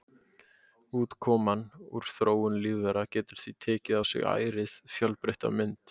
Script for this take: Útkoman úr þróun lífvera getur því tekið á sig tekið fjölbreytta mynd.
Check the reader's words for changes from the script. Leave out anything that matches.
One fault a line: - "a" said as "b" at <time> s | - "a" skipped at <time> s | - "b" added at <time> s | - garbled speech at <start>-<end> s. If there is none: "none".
- "tekið" said as "ærið" at 4.4 s